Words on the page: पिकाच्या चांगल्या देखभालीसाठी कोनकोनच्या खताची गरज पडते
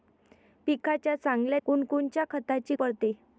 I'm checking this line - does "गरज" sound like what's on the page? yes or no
no